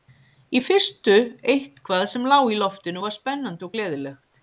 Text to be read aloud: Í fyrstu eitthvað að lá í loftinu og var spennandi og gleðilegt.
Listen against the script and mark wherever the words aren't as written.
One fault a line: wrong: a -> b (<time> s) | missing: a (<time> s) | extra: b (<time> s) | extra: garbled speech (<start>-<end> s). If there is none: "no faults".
wrong: að -> sem (2.1 s)